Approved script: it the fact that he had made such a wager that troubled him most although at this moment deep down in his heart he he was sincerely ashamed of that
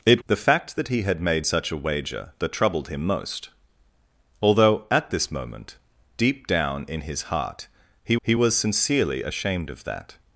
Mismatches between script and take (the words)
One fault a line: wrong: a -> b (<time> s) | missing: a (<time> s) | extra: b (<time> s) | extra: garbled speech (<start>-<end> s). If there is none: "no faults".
no faults